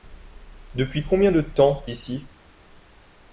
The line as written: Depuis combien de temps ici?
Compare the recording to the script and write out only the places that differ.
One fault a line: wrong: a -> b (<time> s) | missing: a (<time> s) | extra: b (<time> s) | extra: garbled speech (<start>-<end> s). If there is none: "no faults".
no faults